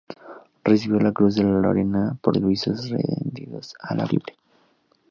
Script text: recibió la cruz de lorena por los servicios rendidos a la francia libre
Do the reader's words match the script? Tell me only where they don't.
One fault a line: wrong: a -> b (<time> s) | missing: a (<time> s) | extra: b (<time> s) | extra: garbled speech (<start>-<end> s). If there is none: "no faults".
missing: los (2.4 s)
missing: francia (4.1 s)